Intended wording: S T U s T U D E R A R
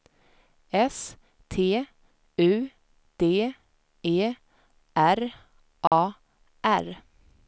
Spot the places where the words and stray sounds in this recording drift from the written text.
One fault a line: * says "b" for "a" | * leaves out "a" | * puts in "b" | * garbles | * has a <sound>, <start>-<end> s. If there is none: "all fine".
* leaves out "s T U"
* has a dropout, 5.9-5.9 s